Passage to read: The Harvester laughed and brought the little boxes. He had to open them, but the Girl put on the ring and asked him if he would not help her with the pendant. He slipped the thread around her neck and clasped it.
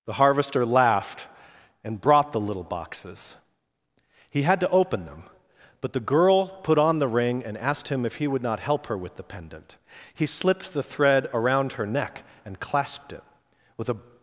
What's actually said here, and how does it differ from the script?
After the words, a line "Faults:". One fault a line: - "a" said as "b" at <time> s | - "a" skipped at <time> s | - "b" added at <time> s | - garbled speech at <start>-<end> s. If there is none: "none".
The Harvester laughed and brought the little boxes. He had to open them, but the Girl put on the ring and asked him if he would not help her with the pendant. He slipped the thread around her neck and clasped it. With a
Faults:
- "With a" added at 13.8 s